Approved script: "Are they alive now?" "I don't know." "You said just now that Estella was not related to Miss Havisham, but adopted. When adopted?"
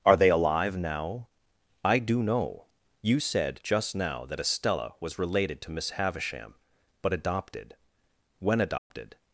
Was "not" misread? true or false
true